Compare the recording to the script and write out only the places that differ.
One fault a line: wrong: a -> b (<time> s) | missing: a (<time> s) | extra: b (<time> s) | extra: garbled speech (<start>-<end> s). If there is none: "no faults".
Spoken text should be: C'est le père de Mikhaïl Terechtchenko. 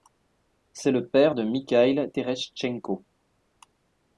no faults